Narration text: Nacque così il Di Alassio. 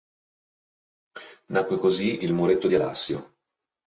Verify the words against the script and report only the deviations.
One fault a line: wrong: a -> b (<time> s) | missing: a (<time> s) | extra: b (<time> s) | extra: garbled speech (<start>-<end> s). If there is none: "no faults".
extra: Muretto (2.3 s)